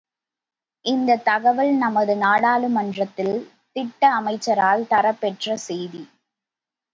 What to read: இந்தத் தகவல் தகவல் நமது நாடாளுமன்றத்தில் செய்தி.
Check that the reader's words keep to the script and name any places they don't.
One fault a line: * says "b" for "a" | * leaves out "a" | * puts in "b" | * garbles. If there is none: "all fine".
* leaves out "தகவல்"
* puts in "திட்ட அமைச்சரால் தரப்பெற்ற"